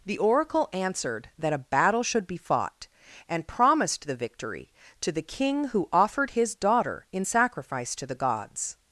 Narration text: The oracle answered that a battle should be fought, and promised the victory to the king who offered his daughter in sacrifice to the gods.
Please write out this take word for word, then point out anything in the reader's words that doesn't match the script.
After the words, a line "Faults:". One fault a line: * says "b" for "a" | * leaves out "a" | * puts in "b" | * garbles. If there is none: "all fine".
The oracle answered that a battle should be fought, and promised the victory to the king who offered his daughter in sacrifice to the gods.
Faults:
all fine